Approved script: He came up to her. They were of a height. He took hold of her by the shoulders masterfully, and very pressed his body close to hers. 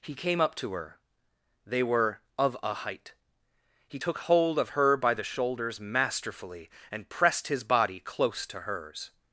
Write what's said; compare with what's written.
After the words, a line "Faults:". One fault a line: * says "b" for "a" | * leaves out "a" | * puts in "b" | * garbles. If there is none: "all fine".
He came up to her. They were of a height. He took hold of her by the shoulders masterfully, and pressed his body close to hers.
Faults:
* leaves out "very"